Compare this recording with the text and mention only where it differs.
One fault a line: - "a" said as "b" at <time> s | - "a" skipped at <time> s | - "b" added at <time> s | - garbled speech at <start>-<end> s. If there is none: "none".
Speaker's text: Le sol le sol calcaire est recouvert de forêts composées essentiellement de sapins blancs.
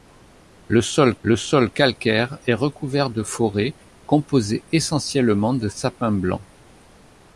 none